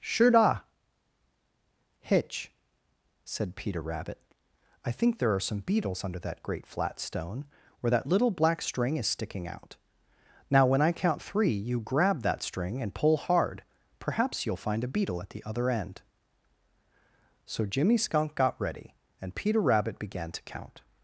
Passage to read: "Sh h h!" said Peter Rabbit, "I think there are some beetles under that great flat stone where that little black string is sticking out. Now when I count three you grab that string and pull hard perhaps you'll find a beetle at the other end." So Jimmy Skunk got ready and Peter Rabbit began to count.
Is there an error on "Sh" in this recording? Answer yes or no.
yes